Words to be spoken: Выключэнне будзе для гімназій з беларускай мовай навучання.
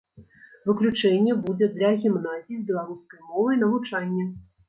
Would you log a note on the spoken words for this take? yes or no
no